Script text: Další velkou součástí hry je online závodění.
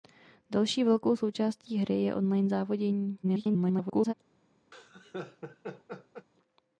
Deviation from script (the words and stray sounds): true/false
true